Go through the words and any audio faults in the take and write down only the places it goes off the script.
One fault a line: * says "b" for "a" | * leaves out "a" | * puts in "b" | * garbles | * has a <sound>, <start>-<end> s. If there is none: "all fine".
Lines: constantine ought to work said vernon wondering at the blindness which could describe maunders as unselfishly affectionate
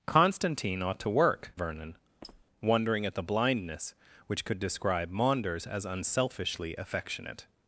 * leaves out "said"
* has a squeak, 2.2-2.5 s